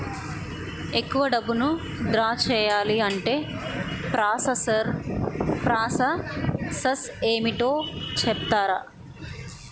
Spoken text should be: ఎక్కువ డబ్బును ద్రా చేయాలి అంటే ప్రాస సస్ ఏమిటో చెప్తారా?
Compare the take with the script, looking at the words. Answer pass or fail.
pass